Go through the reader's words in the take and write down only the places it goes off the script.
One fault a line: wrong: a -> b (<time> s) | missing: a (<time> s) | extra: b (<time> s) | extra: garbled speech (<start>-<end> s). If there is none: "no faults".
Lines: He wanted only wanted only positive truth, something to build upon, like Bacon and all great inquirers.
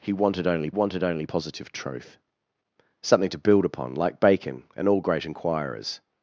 no faults